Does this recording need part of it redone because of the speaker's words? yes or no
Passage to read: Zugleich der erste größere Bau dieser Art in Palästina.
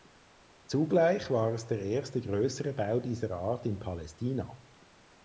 yes